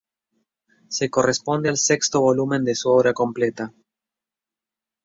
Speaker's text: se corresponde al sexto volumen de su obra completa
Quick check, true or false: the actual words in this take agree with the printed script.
true